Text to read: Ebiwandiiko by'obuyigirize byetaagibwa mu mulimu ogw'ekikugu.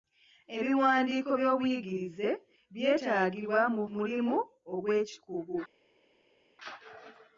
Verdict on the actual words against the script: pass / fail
pass